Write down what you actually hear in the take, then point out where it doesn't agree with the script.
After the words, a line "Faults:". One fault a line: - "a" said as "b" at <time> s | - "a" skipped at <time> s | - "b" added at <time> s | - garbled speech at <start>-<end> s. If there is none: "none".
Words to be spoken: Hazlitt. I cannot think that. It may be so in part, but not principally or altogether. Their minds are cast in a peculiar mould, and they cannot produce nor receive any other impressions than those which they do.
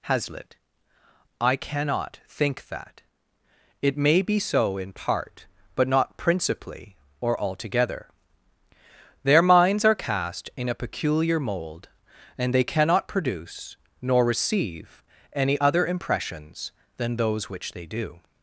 Hazlitt. I cannot think that. It may be so in part, but not principally or altogether. Their minds are cast in a peculiar mould, and they cannot produce nor receive any other impressions than those which they do.
Faults:
none